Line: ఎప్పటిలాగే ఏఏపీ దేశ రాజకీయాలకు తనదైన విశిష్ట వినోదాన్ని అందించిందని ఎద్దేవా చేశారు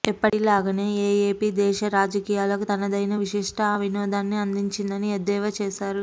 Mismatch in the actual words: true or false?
false